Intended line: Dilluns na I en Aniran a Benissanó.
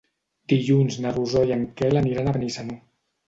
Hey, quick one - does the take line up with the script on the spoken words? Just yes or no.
no